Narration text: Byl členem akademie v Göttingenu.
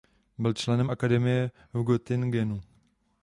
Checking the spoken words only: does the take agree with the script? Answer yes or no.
yes